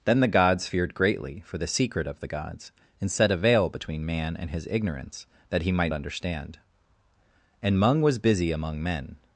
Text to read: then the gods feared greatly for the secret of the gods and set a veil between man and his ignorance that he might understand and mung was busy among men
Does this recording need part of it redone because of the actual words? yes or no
no